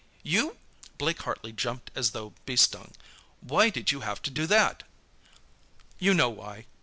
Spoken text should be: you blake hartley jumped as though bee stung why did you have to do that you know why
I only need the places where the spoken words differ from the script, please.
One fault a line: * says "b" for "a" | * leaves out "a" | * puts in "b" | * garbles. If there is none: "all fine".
all fine